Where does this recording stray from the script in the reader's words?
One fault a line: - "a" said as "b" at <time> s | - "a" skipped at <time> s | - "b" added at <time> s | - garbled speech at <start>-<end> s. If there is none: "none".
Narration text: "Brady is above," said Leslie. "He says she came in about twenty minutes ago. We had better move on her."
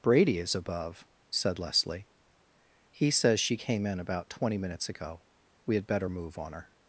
none